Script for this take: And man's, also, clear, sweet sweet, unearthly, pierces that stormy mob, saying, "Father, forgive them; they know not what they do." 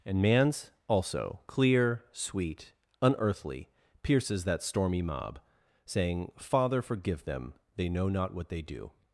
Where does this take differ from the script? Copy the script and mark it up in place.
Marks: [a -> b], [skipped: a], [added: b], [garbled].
And man's, also, clear, sweet [skipped: sweet,] unearthly, pierces that stormy mob, saying, "Father, forgive them; they know not what they do."